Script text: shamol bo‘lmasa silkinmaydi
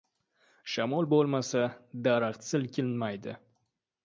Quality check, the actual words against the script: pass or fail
fail